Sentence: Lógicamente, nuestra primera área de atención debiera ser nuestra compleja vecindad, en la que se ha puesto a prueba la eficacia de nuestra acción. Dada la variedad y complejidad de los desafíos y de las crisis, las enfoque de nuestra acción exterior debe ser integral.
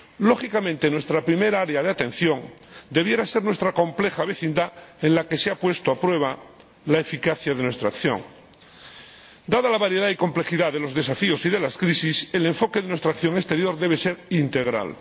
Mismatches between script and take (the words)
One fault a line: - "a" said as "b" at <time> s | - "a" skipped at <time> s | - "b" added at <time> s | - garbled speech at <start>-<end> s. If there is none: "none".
- "las" said as "el" at 12.3 s